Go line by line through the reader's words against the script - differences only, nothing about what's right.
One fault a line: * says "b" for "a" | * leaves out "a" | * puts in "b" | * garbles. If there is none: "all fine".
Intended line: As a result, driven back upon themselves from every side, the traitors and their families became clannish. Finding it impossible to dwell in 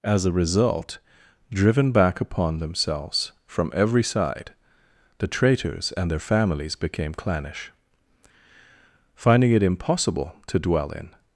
all fine